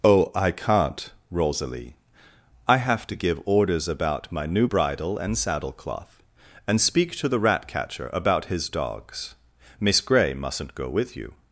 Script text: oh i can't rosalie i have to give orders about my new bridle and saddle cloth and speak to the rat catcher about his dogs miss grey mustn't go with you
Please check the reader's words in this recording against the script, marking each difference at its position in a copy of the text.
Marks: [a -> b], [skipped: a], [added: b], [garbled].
oh i can't rosalie i have to give orders about my new bridle and saddle cloth and speak to the rat catcher about his dogs miss grey mustn't go with you